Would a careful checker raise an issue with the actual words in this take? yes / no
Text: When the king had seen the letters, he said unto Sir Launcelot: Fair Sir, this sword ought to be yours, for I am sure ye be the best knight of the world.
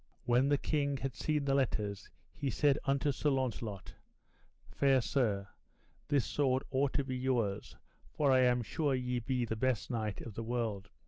no